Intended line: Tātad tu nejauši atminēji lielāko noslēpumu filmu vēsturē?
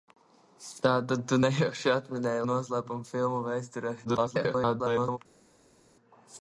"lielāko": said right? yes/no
no